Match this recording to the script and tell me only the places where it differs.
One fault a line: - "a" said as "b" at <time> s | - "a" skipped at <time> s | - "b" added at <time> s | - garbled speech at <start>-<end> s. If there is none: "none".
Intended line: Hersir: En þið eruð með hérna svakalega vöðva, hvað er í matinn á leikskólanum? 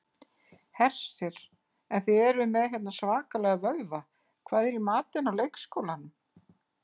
none